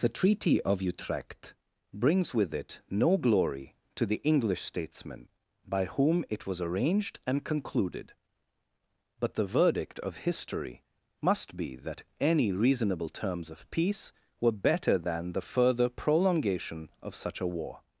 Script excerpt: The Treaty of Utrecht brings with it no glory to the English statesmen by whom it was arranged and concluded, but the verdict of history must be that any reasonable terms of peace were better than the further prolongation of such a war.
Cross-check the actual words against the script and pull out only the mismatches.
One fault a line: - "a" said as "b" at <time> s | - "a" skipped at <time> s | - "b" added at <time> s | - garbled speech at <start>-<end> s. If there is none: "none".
none